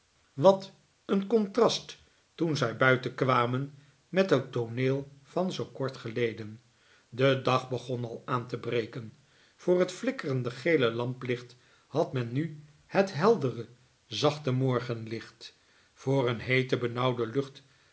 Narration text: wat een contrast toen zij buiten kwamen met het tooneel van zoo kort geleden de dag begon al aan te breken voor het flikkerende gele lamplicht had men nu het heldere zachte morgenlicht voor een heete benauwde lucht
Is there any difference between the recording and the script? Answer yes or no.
no